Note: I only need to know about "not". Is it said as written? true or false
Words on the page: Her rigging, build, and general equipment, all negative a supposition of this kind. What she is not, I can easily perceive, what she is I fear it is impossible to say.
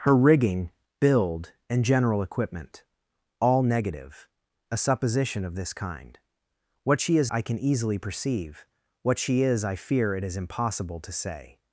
false